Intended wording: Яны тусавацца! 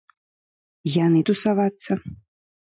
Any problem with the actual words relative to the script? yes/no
no